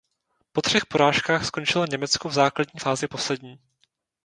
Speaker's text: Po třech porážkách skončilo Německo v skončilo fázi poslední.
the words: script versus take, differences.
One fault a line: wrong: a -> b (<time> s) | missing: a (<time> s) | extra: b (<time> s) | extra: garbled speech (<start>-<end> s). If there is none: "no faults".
wrong: skončilo -> základní (2.3 s)